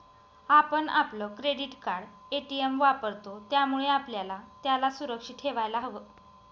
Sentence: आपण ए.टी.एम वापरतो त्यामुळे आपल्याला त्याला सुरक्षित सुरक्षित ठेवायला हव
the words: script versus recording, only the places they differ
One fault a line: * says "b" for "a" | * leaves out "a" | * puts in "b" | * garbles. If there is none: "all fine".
* puts in "आपलं क्रेडिट कार्ड"
* leaves out "सुरक्षित"